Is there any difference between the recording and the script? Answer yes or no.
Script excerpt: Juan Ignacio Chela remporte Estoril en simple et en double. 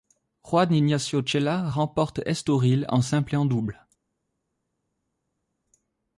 no